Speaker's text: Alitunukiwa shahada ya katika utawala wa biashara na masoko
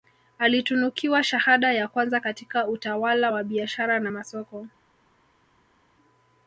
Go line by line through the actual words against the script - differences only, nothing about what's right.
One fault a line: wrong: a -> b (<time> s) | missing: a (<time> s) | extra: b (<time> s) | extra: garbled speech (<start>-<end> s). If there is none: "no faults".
extra: kwanza (1.9 s)